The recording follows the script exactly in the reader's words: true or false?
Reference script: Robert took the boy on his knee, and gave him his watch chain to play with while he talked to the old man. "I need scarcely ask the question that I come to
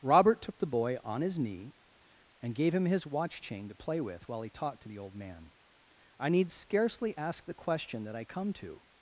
true